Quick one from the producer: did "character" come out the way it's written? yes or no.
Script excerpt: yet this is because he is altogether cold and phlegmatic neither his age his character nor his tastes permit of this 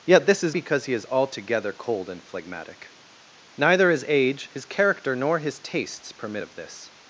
yes